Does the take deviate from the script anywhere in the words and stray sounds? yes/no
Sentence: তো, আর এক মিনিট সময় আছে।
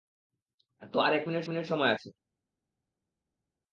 yes